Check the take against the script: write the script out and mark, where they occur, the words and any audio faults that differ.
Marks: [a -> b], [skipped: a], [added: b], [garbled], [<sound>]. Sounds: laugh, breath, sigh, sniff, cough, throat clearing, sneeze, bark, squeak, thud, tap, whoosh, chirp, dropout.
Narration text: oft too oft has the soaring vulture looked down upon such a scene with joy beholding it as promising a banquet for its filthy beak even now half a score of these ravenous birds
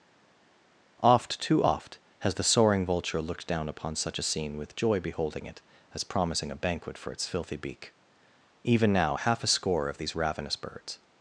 oft too oft has the soaring vulture looked down upon such a scene with joy beholding it as promising a banquet for its filthy beak even now half a score of these ravenous birds